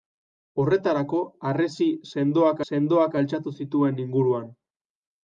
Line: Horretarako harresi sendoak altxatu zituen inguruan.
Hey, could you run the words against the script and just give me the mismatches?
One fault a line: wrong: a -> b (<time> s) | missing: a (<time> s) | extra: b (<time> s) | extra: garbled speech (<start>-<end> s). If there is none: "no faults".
extra: sendoak (2.7 s)